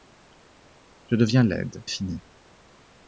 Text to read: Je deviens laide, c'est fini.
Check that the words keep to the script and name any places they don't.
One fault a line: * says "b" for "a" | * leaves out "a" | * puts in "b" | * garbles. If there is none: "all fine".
* leaves out "c'est"